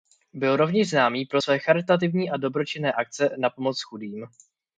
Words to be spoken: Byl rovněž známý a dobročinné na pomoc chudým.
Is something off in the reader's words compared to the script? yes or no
yes